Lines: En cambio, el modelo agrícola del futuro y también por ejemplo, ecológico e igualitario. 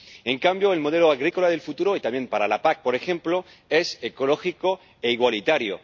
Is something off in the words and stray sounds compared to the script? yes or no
yes